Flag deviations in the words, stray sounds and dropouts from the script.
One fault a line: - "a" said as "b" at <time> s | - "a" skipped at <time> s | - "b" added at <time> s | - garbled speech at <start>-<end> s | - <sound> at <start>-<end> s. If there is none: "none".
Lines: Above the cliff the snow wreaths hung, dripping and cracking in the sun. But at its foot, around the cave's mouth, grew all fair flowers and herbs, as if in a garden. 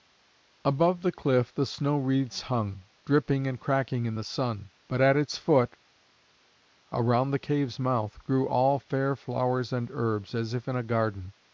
none